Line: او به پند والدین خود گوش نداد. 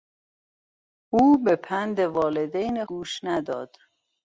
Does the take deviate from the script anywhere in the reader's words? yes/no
yes